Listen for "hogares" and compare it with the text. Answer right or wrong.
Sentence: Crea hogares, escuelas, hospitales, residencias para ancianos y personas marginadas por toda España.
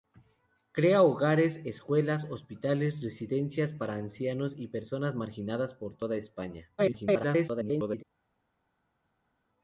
right